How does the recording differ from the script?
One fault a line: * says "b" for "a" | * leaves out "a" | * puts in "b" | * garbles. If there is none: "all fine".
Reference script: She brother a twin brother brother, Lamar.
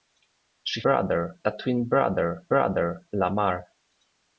all fine